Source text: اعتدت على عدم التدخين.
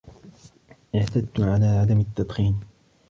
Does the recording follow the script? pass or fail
pass